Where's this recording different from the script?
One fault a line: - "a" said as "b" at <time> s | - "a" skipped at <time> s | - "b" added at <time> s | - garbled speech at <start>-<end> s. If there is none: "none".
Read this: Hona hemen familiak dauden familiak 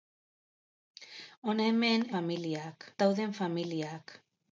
none